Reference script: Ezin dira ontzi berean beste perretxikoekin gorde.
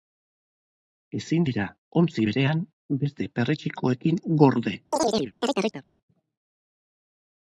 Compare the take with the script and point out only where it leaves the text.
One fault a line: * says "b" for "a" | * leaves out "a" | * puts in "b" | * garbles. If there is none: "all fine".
all fine